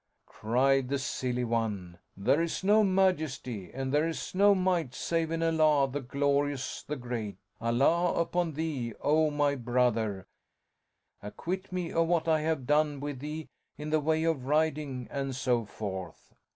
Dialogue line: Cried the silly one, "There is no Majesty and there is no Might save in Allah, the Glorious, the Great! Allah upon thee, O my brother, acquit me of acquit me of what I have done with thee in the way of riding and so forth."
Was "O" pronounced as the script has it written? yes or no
yes